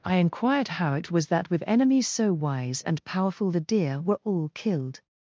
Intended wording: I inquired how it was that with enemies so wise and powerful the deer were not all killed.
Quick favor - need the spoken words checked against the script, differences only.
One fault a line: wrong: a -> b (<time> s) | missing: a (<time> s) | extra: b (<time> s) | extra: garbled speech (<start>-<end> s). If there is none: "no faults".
missing: not (4.2 s)